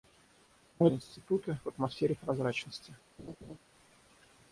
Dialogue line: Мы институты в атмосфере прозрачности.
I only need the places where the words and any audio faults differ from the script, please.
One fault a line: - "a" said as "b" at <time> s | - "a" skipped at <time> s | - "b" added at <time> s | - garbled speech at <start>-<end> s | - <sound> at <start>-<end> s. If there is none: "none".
- laugh at 3.2-3.6 s